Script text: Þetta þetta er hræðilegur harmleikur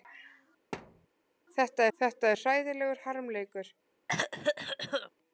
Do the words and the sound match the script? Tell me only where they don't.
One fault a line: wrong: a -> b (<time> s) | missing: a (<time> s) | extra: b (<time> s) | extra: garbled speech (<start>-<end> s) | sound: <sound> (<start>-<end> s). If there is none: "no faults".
sound: thud (0.7-1.1 s)
sound: cough (4.1-5.1 s)